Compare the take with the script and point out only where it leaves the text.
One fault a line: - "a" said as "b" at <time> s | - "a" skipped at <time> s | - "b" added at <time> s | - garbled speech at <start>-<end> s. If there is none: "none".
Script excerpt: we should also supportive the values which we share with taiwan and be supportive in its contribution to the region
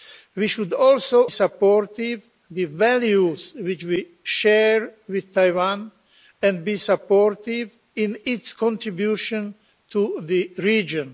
none